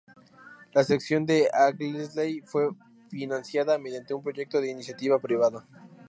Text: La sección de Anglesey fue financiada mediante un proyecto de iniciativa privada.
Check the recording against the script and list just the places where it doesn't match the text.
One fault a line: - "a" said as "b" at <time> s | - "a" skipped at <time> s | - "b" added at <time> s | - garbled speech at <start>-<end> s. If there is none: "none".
none